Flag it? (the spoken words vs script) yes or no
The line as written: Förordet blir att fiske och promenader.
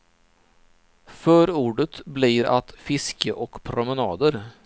no